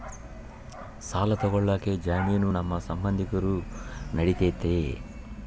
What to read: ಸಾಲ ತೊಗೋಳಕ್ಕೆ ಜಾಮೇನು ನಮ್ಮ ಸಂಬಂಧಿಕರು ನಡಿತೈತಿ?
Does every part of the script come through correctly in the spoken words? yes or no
yes